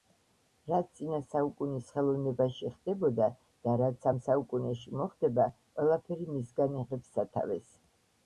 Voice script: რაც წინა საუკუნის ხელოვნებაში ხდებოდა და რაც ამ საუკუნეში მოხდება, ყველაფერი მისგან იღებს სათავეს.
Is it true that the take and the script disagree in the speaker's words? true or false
false